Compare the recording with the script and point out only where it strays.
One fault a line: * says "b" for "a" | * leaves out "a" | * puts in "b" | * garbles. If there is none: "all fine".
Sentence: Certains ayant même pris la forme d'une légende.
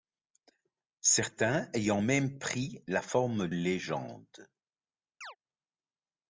* leaves out "d'une"